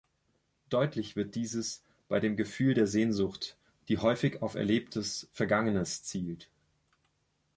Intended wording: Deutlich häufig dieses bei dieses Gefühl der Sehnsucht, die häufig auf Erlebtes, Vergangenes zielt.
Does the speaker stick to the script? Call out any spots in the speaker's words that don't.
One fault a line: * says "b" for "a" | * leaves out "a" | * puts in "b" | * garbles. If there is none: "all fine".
* says "wird" for "häufig"
* says "dem" for "dieses"